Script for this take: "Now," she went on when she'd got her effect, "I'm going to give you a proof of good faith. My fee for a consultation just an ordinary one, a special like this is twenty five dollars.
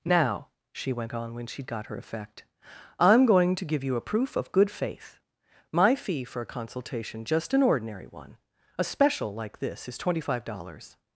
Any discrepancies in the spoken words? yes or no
no